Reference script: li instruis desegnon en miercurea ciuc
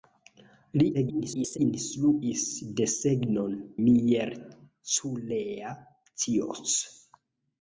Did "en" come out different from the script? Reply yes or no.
yes